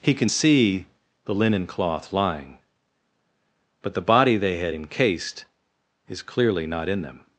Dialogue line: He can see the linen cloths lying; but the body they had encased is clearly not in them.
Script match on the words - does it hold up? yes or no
no